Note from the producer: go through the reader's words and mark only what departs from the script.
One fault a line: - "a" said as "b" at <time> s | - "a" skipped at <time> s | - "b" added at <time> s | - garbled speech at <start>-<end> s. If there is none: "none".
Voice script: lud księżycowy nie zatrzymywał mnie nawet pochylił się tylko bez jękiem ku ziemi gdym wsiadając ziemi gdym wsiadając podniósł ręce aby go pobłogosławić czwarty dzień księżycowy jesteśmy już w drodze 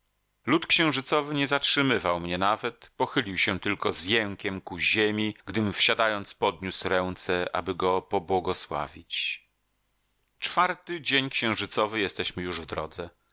- "bez" said as "z" at 3.9 s
- "ziemi gdym wsiadając" skipped at 6.3 s